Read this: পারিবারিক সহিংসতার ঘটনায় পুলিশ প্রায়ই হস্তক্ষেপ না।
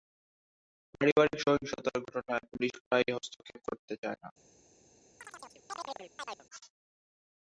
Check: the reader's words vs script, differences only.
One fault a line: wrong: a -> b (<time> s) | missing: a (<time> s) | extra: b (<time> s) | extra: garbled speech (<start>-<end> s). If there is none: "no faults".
extra: করতে চায় (3.7 s)